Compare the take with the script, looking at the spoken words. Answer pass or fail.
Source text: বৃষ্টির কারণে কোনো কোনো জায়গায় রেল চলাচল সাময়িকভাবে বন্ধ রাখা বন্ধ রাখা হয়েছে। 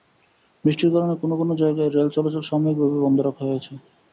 fail